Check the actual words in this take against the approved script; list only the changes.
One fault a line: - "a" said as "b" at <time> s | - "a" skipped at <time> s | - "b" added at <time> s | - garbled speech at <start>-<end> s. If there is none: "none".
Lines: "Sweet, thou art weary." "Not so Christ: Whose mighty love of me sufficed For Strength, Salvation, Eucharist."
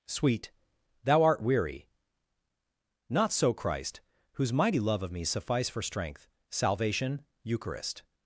- "sufficed" said as "suffice" at 5.2 s